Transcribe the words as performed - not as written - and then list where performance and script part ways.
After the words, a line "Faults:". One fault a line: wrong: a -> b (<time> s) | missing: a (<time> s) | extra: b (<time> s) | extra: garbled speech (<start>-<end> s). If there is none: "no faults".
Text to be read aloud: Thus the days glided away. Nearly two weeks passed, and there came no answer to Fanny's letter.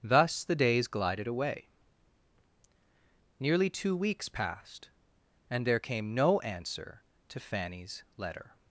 Thus the days glided away. Nearly two weeks passed, and there came no answer to Fanny's letter.
Faults:
no faults